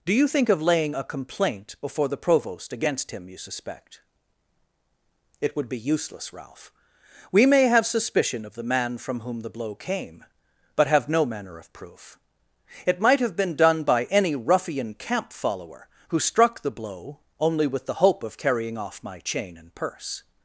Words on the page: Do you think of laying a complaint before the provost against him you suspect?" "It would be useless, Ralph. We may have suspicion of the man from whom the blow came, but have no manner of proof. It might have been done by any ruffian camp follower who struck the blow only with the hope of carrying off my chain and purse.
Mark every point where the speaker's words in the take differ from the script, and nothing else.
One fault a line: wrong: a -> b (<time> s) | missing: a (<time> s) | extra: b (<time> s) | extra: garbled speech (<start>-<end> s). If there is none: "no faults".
no faults